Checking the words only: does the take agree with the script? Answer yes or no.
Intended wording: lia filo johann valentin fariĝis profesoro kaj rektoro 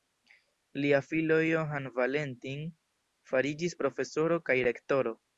yes